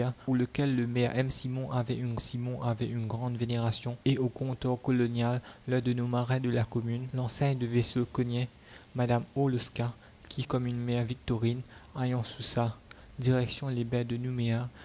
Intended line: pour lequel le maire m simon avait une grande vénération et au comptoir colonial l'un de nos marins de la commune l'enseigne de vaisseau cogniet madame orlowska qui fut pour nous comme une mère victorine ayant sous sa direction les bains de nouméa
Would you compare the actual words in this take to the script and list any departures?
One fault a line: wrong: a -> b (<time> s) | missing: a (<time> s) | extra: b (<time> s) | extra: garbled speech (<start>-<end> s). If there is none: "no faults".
extra: simon avait une (2.2 s)
missing: fut pour nous (10.4 s)